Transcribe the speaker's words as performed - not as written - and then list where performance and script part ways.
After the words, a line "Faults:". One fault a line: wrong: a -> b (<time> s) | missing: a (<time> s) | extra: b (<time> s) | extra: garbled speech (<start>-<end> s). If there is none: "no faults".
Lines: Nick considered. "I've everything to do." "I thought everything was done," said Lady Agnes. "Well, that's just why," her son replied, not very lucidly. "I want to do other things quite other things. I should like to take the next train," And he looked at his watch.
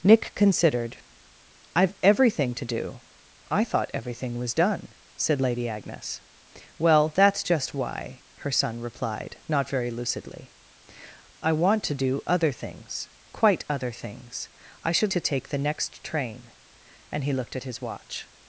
Nick considered. "I've everything to do." "I thought everything was done," said Lady Agnes. "Well, that's just why," her son replied, not very lucidly. "I want to do other things quite other things. I should to take the next train," And he looked at his watch.
Faults:
missing: like (15.1 s)